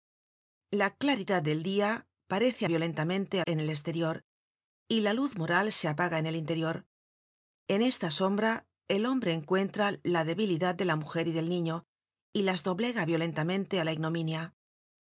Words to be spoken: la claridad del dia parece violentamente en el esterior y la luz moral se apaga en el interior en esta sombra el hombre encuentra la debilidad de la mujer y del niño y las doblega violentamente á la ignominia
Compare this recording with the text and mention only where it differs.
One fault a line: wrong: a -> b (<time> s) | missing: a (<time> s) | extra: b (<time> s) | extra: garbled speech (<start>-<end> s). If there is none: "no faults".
no faults